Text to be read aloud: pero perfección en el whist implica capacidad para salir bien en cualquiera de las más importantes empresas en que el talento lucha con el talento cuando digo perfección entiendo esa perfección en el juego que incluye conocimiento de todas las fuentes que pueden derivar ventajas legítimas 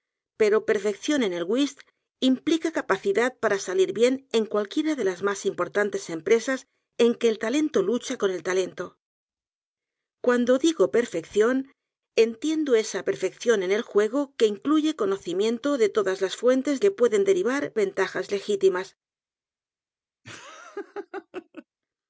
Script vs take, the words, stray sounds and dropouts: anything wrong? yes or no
yes